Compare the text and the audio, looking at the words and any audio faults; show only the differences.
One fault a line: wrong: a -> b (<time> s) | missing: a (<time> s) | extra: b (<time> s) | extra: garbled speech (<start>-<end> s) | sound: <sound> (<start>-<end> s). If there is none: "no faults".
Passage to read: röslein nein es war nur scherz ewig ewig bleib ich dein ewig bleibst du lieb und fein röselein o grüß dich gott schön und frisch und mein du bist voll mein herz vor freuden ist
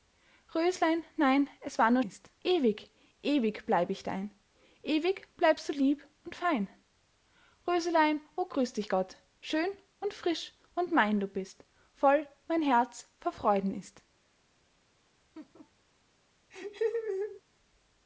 wrong: scherz -> ist (2.0 s)
sound: laugh (15.3-15.7 s)
sound: laugh (16.5-17.4 s)